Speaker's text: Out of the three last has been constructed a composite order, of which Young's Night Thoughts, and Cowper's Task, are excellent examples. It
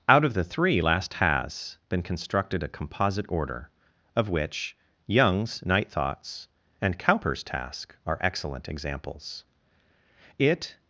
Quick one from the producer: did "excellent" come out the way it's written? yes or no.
yes